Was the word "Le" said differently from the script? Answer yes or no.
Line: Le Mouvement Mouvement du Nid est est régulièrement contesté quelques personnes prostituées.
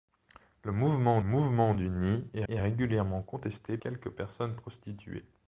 no